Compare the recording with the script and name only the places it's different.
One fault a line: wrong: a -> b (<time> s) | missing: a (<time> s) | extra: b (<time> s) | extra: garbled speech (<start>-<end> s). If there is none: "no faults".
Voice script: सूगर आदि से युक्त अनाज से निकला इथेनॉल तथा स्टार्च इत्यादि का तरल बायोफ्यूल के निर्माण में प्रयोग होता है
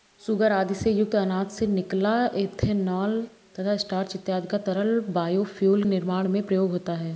missing: के (5.8 s)